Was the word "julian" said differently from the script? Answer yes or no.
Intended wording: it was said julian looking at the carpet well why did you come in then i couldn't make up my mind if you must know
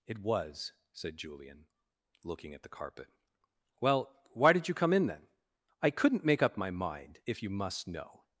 no